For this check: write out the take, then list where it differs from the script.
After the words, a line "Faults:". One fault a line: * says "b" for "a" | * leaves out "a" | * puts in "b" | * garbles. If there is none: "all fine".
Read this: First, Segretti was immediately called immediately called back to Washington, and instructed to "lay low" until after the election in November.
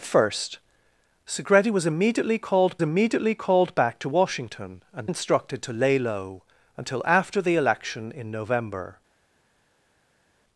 First, Segretti was immediately called immediately called back to Washington, and instructed to "lay low" until after the election in November.
Faults:
all fine